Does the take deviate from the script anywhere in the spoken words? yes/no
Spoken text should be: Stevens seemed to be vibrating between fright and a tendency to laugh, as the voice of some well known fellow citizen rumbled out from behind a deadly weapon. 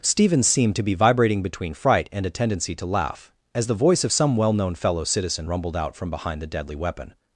yes